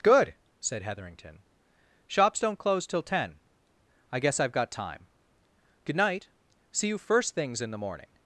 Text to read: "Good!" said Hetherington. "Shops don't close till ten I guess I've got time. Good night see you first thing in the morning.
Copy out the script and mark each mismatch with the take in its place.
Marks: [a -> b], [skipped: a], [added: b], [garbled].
"Good!" said Hetherington. "Shops don't close till ten I guess I've got time. Good night see you first [thing -> things] in the morning.